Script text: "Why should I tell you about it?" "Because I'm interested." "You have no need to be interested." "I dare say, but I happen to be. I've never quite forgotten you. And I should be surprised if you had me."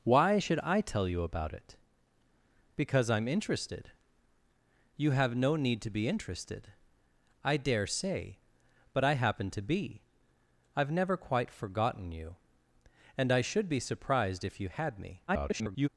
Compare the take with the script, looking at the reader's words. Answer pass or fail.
fail